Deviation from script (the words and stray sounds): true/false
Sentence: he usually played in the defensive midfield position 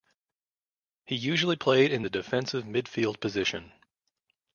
false